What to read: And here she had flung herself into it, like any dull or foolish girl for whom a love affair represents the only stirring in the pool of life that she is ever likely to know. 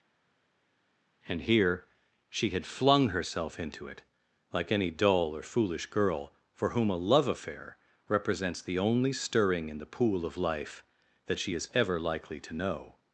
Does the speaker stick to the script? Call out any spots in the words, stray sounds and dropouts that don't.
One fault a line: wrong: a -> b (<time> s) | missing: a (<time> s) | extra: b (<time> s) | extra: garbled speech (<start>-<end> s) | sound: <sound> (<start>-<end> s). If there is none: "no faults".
no faults